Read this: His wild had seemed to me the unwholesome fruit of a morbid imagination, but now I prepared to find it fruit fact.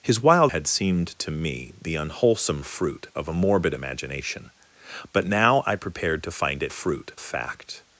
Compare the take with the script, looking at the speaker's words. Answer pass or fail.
pass